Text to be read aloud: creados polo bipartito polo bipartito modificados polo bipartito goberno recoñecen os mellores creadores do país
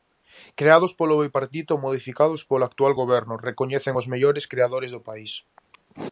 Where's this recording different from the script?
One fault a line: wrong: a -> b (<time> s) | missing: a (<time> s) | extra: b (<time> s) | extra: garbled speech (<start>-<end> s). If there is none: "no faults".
missing: polo bipartito (1.7 s)
wrong: bipartito -> actual (2.7 s)